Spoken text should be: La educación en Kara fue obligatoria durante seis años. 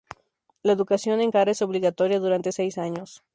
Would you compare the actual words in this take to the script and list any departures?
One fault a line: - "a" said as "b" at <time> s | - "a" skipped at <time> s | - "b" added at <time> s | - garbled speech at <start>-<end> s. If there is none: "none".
- "fue" said as "es" at 1.5 s